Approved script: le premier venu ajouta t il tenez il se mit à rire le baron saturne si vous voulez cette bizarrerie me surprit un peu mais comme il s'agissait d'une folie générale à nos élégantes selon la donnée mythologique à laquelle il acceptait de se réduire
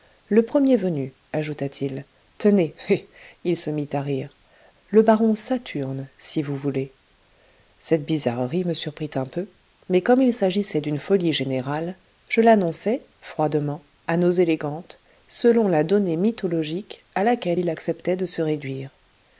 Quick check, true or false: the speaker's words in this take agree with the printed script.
false